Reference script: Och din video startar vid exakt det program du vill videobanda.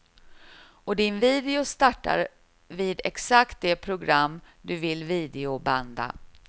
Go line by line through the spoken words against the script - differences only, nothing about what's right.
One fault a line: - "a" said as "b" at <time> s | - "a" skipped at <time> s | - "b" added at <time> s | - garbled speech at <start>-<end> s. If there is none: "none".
none